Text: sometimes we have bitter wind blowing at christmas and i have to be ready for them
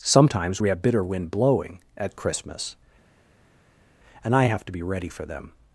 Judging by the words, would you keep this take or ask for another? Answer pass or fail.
pass